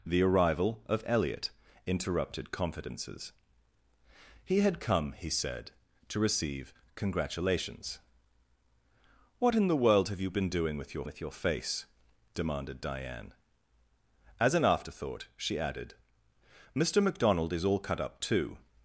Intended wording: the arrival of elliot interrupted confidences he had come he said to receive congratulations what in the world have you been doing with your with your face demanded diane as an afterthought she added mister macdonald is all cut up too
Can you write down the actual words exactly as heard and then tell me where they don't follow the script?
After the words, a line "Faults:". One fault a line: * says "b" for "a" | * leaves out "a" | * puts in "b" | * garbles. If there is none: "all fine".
the arrival of elliot interrupted confidences he had come he said to receive congratulations what in the world have you been doing with your with your face demanded diane as an afterthought she added mister macdonald is all cut up too
Faults:
all fine